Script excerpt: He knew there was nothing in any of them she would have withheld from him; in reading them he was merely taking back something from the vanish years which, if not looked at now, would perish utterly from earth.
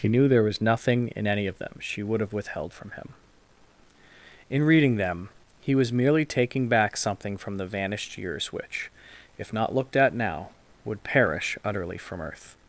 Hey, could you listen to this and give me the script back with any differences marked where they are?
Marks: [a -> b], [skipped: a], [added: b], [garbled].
He knew there was nothing in any of them she would have withheld from him; in reading them he was merely taking back something from the [vanish -> vanished] years which, if not looked at now, would perish utterly from earth.